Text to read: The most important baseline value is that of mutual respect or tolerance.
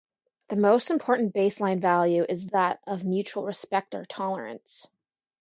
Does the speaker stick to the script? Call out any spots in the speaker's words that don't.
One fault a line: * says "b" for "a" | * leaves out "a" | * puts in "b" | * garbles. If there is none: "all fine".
all fine